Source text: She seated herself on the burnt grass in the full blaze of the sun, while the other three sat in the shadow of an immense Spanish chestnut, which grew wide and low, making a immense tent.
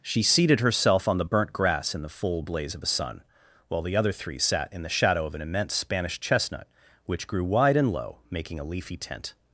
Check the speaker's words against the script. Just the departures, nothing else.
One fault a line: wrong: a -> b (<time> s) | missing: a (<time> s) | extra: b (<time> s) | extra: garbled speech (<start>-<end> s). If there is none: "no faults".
wrong: immense -> leafy (8.6 s)